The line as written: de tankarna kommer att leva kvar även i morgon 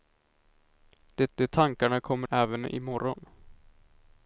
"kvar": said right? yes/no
no